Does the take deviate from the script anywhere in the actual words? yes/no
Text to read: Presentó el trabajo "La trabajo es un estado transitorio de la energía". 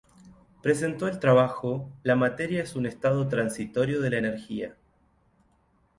yes